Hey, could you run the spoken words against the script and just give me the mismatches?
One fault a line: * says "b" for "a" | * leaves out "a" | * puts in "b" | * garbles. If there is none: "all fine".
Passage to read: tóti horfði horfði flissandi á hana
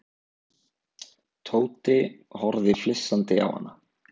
* leaves out "horfði"